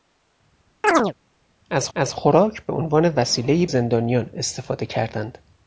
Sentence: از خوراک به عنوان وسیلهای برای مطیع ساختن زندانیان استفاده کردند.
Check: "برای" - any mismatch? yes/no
yes